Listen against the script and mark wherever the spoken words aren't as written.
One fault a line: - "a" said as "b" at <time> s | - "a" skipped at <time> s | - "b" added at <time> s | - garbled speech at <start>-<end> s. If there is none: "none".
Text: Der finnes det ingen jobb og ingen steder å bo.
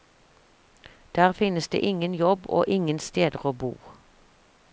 none